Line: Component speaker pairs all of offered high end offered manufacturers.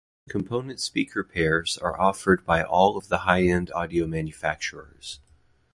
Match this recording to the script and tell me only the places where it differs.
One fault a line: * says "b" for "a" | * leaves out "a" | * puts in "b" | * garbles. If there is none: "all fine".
* puts in "are offered by"
* says "the" for "offered"
* says "audio" for "offered"